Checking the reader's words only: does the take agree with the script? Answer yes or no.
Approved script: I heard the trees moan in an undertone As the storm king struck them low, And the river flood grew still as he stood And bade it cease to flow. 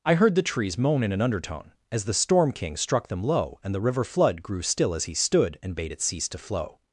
yes